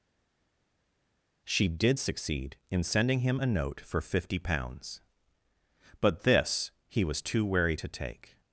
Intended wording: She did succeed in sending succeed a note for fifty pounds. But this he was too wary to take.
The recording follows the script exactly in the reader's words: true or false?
false